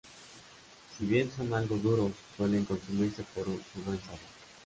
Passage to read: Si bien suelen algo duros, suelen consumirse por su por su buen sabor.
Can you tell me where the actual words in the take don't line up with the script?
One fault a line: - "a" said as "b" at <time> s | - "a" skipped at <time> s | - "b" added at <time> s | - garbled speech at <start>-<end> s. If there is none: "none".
- "suelen" said as "son" at 1.4 s
- "por su" skipped at 3.8 s